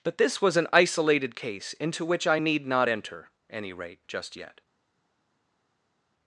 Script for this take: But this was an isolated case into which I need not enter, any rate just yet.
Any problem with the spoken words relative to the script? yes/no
no